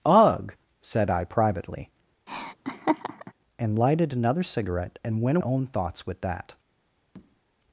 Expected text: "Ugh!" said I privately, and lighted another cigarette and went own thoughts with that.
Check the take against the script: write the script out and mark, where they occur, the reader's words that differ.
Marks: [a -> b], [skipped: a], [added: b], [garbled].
"Ugh!" said I privately, and lighted another cigarette and went own thoughts with that.